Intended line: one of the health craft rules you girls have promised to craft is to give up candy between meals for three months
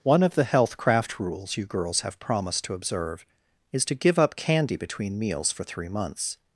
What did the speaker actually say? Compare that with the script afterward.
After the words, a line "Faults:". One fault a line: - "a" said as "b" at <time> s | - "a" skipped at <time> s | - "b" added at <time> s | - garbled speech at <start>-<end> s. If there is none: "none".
one of the health craft rules you girls have promised to observe is to give up candy between meals for three months
Faults:
- "craft" said as "observe" at 2.7 s